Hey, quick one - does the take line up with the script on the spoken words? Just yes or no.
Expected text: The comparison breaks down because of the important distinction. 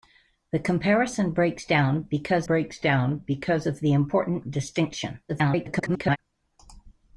no